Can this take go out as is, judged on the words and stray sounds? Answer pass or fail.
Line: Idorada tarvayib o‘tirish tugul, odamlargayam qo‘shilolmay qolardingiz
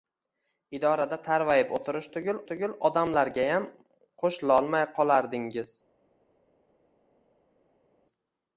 fail